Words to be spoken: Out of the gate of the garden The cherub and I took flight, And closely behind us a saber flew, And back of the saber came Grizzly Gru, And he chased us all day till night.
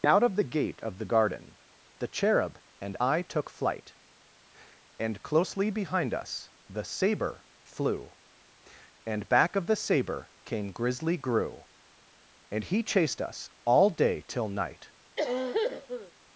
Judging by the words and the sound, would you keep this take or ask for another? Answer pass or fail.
fail